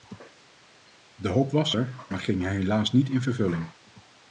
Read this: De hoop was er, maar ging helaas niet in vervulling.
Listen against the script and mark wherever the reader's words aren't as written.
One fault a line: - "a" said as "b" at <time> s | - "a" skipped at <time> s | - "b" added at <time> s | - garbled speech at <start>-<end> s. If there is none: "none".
none